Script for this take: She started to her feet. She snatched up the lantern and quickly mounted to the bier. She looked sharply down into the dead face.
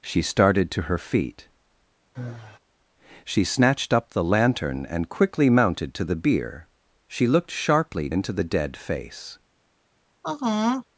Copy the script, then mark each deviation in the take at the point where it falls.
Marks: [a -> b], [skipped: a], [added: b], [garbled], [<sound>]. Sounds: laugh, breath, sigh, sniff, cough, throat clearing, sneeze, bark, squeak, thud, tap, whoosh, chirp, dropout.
She started to her feet. [sigh] She snatched up the lantern and quickly mounted to the bier. She looked sharply [skipped: down] into the dead face. [sigh]